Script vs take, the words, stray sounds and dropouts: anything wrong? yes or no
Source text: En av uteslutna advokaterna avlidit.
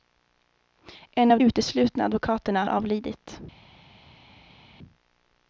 no